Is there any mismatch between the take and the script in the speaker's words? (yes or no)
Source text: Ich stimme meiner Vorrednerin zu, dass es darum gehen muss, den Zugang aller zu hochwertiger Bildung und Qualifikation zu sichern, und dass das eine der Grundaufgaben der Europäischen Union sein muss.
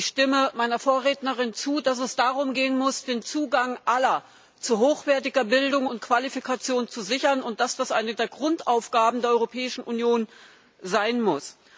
no